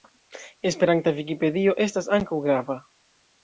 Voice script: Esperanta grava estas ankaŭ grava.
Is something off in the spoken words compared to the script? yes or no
yes